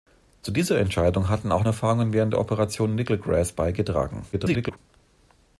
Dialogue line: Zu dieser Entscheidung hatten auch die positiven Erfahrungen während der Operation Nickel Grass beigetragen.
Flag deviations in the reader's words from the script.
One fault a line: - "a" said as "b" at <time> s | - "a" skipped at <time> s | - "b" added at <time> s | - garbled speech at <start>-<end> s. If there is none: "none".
- "die positiven" skipped at 1.6 s
- garbled speech at 4.3-4.8 s